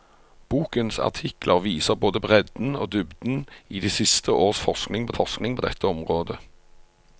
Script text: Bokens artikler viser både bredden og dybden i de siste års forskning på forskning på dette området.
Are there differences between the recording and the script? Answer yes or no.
no